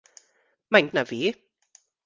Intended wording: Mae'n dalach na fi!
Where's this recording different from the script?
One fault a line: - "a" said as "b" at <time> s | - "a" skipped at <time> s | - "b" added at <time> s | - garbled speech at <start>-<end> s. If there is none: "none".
- "dalach" skipped at 0.9 s